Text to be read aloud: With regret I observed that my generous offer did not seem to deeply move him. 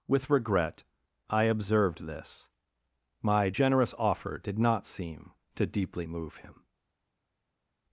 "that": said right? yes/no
no